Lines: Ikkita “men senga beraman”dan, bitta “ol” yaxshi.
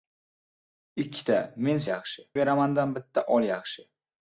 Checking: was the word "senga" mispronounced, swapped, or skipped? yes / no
yes